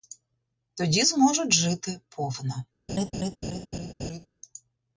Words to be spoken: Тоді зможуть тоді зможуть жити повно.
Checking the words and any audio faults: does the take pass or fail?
fail